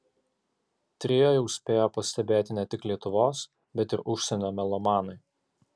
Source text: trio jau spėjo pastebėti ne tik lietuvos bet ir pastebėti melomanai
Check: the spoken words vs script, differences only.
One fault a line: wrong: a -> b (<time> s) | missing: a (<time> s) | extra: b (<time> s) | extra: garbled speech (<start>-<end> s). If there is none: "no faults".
wrong: pastebėti -> užsienio (4.2 s)